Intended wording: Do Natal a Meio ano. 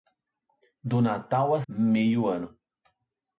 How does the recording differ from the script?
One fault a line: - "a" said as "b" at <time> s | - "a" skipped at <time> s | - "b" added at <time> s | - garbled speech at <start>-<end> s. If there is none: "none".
none